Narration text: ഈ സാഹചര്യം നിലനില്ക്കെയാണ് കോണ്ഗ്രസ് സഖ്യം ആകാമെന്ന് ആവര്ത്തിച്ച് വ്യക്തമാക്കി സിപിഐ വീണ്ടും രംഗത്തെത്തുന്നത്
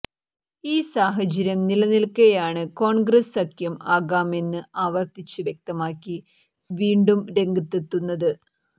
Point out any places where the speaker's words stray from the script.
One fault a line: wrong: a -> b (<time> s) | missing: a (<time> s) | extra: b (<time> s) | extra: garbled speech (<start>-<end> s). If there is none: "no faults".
missing: സിപിഐ (6.2 s)